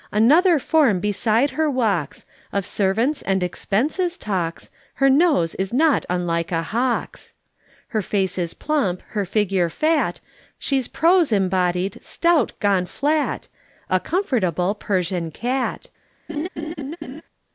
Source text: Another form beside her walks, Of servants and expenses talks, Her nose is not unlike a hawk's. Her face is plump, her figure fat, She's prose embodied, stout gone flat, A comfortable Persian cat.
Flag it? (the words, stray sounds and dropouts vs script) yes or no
yes